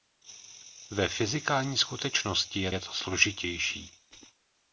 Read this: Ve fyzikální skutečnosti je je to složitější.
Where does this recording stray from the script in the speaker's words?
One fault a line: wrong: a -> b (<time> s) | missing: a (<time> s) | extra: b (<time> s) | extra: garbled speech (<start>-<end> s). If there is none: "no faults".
no faults